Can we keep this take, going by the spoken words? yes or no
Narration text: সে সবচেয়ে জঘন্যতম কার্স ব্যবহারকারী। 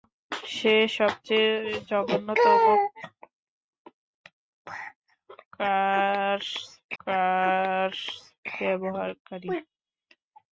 no